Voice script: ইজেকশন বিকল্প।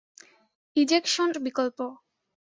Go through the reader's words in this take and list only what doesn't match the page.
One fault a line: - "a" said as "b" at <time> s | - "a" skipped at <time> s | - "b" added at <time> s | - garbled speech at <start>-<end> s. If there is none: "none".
none